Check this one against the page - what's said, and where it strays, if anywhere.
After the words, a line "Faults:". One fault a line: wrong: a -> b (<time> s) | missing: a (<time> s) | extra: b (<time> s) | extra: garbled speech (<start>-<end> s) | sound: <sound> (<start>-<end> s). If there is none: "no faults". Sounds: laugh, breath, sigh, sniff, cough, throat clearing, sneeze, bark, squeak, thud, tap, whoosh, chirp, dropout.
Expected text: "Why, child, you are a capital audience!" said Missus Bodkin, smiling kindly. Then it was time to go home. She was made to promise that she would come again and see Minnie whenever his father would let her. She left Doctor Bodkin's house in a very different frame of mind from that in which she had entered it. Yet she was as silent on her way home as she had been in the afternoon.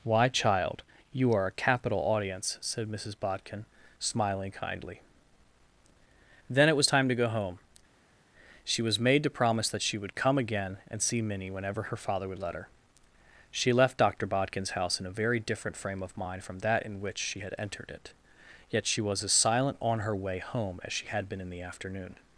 "Why, child, you are a capital audience!" said Missus Bodkin, smiling kindly. Then it was time to go home. She was made to promise that she would come again and see Minnie whenever her father would let her. She left Doctor Bodkin's house in a very different frame of mind from that in which she had entered it. Yet she was as silent on her way home as she had been in the afternoon.
Faults:
wrong: his -> her (11.8 s)